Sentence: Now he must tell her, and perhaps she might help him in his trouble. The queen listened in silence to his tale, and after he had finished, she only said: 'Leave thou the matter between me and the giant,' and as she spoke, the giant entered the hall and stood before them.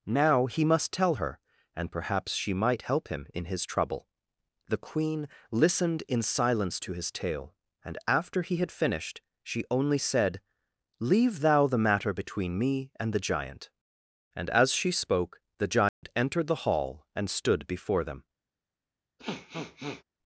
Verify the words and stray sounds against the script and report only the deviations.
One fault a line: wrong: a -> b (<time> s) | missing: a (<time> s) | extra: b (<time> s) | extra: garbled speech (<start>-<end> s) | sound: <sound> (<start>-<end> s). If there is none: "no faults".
sound: dropout (15.9-16.0 s)
sound: sniff (19.2-20.0 s)